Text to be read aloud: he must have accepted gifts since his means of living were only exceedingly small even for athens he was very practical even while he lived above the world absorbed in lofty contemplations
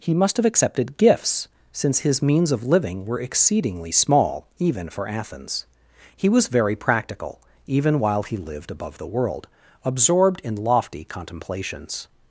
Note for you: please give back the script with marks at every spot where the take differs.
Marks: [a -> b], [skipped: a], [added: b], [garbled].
he must have accepted gifts since his means of living were [skipped: only] exceedingly small even for athens he was very practical even while he lived above the world absorbed in lofty contemplations